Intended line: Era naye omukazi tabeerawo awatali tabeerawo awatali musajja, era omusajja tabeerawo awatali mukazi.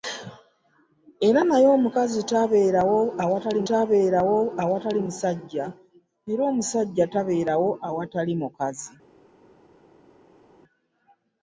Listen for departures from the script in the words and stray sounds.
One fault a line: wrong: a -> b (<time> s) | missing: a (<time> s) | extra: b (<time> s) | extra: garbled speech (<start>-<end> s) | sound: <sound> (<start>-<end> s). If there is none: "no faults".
no faults